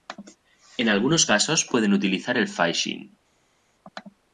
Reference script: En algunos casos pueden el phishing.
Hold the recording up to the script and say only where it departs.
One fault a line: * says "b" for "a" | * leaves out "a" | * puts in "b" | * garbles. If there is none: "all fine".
* puts in "utilizar"